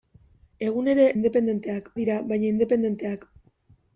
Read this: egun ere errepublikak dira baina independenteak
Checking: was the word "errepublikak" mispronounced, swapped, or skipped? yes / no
yes